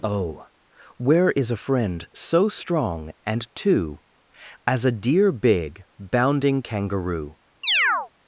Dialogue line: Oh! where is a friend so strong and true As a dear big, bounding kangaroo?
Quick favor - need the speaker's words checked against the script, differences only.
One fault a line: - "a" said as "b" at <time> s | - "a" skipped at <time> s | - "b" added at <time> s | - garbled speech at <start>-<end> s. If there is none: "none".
- "true" said as "two" at 3.5 s